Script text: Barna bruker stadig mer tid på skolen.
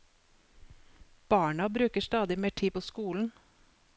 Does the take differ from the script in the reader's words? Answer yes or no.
no